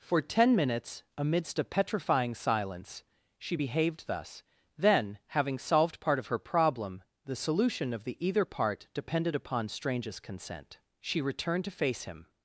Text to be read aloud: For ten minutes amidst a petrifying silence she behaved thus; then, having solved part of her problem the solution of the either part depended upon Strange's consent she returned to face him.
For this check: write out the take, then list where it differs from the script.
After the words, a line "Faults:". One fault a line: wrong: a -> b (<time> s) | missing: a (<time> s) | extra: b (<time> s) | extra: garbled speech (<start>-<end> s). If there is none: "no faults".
For ten minutes amidst a petrifying silence she behaved thus; then, having solved part of her problem the solution of the either part depended upon Strange's consent she returned to face him.
Faults:
no faults